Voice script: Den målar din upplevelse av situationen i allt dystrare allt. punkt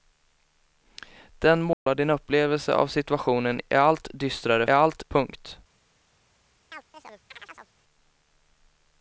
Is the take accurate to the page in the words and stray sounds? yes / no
no